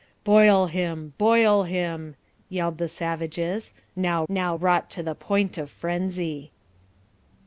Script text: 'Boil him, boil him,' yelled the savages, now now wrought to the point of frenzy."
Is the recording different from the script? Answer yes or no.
no